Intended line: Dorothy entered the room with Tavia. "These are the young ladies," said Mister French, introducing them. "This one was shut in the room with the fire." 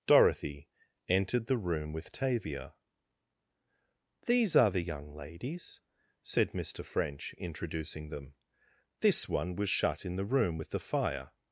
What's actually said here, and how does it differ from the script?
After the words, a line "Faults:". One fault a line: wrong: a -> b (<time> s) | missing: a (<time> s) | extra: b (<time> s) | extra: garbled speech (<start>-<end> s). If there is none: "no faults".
Dorothy entered the room with Tavia. "These are the young ladies," said Mister French, introducing them. "This one was shut in the room with the fire."
Faults:
no faults